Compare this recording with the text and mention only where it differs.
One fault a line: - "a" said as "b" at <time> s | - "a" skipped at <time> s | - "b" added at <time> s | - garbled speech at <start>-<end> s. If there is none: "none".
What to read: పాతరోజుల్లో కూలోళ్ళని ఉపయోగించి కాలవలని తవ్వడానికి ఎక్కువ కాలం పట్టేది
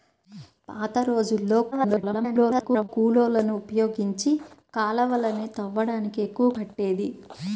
- garbled speech at 1.7-2.9 s
- "కాలం" skipped at 6.5 s